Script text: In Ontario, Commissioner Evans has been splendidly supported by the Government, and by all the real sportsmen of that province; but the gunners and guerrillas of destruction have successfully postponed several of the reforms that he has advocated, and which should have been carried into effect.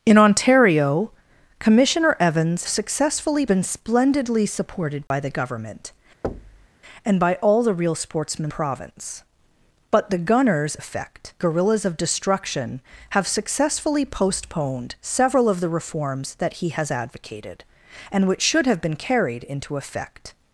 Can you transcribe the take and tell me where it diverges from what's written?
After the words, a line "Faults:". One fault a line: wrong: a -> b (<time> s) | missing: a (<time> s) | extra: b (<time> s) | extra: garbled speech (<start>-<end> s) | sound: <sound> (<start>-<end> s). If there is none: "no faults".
In Ontario, Commissioner Evans successfully been splendidly supported by the Government, and by all the real sportsmen province; but the gunners effect guerrillas of destruction have successfully postponed several of the reforms that he has advocated, and which should have been carried into effect.
Faults:
wrong: has -> successfully (2.7 s)
sound: dropout (5.1-5.1 s)
sound: thud (6.2-6.7 s)
missing: of that (8.5 s)
wrong: and -> effect (10.7 s)